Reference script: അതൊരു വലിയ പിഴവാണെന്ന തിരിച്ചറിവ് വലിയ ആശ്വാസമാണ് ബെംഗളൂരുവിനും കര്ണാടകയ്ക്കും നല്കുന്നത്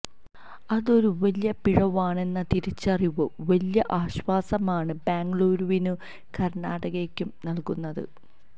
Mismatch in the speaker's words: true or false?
false